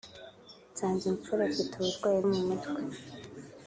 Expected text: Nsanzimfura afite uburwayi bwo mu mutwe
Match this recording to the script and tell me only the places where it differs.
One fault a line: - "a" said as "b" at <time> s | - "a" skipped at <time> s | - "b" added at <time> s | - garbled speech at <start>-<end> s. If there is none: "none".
- "bwo" skipped at 2.2 s